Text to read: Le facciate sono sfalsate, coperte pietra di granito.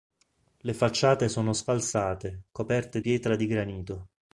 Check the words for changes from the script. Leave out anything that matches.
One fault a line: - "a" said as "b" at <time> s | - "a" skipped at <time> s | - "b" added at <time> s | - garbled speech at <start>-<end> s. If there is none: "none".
none